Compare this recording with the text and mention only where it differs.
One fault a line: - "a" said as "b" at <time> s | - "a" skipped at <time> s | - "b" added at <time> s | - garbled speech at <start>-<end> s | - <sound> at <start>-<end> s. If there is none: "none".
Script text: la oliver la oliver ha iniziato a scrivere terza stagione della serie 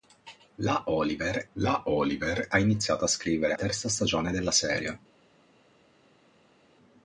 none